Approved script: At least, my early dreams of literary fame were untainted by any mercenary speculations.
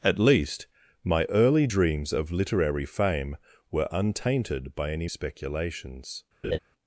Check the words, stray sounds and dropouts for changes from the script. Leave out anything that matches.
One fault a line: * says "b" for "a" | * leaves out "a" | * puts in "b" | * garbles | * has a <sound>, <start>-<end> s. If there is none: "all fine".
* leaves out "mercenary"
* has a laugh, 6.4-6.6 s